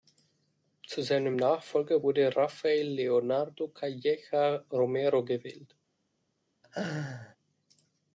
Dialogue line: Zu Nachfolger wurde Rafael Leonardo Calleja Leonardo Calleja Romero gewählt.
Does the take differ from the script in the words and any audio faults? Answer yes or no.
yes